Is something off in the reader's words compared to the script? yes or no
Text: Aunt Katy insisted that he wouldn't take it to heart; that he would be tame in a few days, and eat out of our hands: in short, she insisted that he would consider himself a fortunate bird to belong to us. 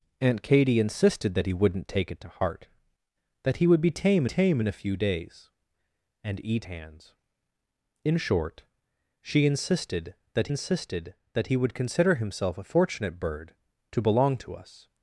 yes